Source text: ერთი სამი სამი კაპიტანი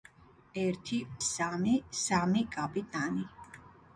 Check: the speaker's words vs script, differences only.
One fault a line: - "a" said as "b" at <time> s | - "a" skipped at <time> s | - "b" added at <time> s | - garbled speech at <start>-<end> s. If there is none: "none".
none